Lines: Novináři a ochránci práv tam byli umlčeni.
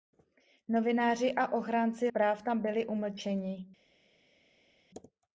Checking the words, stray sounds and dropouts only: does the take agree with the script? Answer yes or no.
yes